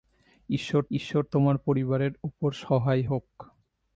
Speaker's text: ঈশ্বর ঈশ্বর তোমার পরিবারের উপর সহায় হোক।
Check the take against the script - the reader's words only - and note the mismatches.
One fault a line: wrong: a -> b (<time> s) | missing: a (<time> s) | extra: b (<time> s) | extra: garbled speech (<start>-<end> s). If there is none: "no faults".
no faults